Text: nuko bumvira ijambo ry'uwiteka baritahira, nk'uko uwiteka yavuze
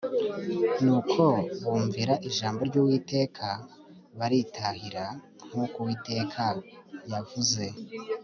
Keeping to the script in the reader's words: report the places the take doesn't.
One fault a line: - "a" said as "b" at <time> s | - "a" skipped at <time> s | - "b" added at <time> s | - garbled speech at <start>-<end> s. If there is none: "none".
none